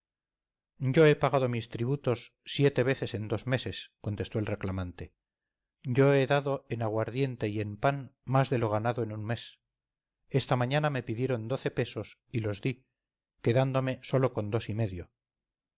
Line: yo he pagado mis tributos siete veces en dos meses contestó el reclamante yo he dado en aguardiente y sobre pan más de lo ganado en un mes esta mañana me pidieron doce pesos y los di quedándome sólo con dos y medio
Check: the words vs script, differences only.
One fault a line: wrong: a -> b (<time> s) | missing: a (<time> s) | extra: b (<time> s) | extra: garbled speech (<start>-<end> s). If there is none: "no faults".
wrong: sobre -> en (7.6 s)